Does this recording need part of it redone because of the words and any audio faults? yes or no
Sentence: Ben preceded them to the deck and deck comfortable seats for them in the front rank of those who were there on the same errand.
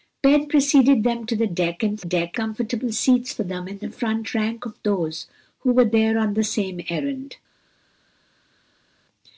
no